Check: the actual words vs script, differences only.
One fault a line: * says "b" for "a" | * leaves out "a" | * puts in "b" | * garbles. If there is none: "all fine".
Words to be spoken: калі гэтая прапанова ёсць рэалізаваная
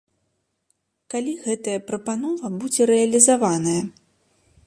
* says "будзе" for "ёсць"